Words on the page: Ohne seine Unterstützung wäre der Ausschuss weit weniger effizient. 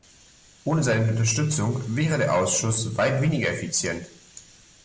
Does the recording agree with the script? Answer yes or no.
yes